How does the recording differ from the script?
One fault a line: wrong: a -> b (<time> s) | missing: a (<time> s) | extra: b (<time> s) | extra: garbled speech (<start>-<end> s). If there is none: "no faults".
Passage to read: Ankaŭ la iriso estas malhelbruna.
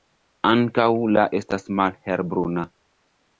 missing: iriso (1.2 s)